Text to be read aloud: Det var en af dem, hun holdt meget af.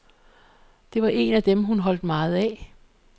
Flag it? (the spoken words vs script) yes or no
no